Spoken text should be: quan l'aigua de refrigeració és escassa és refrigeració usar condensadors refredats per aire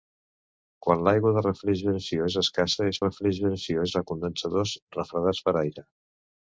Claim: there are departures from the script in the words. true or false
false